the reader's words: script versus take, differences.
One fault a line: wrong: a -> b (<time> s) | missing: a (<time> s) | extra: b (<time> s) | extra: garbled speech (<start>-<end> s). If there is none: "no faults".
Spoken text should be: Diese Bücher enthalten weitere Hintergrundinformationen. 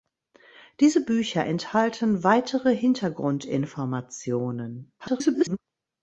extra: garbled speech (5.0-5.6 s)